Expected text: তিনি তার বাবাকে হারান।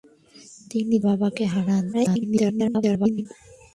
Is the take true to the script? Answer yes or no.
no